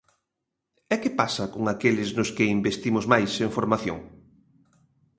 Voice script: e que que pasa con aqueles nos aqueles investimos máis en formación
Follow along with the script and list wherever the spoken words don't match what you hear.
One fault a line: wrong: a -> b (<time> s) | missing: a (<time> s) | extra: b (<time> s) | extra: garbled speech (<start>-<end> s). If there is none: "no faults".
missing: que (1.1 s)
wrong: aqueles -> que (2.4 s)